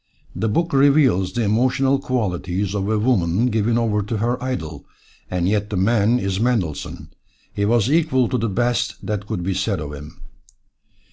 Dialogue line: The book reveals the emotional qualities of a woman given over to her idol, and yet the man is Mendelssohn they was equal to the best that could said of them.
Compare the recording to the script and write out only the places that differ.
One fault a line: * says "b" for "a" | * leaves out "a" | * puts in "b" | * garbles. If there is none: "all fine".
* says "he" for "they"
* puts in "be"
* says "him" for "them"